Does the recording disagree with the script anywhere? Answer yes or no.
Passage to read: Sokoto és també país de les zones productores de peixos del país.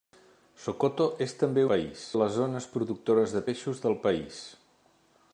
no